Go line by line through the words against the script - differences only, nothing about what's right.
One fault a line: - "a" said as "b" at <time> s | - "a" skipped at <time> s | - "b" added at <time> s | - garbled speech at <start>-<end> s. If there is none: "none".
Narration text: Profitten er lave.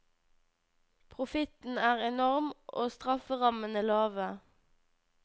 - "enorm og strafferammene" added at 2.1 s